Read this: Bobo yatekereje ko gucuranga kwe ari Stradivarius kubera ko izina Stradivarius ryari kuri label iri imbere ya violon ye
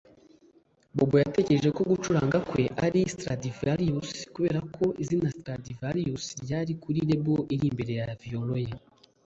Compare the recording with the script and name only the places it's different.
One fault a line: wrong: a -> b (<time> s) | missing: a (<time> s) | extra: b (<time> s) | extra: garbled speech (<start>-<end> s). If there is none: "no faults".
no faults